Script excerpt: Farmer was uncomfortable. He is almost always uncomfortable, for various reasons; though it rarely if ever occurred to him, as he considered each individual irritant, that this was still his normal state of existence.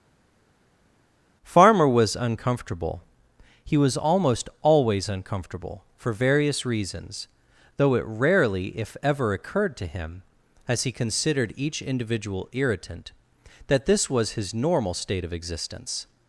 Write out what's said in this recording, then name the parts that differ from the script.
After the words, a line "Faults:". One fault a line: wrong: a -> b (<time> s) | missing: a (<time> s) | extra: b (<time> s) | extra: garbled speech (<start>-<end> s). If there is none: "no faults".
Farmer was uncomfortable. He was almost always uncomfortable, for various reasons; though it rarely if ever occurred to him, as he considered each individual irritant, that this was his normal state of existence.
Faults:
wrong: is -> was (3.8 s)
missing: still (14.3 s)